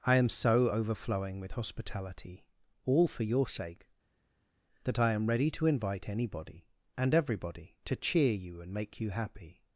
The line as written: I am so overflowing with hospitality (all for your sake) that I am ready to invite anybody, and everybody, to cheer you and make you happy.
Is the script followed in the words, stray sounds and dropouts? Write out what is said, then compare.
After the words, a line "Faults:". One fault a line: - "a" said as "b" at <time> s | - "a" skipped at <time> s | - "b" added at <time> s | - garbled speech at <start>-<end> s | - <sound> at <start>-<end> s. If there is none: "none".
I am so overflowing with hospitality (all for your sake) that I am ready to invite anybody, and everybody, to cheer you and make you happy.
Faults:
none